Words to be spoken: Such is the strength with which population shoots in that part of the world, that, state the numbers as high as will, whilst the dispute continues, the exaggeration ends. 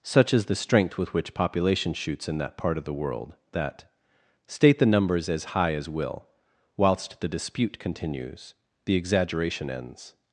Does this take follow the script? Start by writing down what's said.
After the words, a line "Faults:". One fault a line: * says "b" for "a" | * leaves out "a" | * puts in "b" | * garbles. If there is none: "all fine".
Such is the strength with which population shoots in that part of the world, that, state the numbers as high as will, whilst the dispute continues, the exaggeration ends.
Faults:
all fine